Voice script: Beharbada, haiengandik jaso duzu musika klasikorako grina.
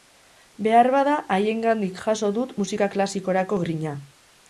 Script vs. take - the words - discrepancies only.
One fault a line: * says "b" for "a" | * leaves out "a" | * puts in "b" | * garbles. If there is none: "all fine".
* says "dut" for "duzu"